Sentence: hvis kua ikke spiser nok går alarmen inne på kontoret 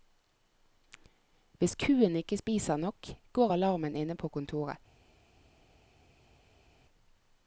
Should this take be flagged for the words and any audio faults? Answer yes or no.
no